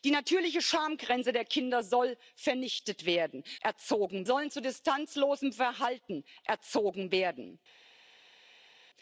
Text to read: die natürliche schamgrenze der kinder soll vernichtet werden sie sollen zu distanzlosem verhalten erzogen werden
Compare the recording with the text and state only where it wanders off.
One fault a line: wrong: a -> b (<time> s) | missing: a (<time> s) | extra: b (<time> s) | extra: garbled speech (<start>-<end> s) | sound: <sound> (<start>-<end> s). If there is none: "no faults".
wrong: sie -> erzogen (3.6 s)